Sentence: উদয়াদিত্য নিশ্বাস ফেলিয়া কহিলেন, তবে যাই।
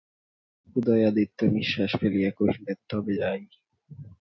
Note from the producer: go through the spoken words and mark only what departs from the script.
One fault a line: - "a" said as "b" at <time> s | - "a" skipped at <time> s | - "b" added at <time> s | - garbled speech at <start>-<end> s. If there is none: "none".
none